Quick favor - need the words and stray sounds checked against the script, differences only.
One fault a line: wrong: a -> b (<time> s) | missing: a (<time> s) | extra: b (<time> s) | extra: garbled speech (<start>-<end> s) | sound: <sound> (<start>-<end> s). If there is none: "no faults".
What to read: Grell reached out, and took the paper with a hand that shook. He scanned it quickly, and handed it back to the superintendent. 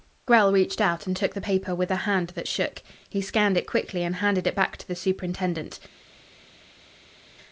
no faults